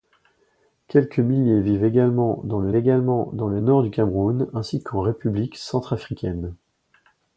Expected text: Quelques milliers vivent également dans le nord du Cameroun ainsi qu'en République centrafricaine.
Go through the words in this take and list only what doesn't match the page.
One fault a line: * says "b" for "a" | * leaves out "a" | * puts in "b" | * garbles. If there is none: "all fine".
* puts in "également dans le"